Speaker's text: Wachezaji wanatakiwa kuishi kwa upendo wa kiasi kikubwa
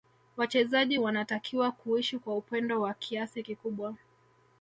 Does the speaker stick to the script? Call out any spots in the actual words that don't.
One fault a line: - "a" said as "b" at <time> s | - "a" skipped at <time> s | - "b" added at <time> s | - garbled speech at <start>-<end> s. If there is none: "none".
none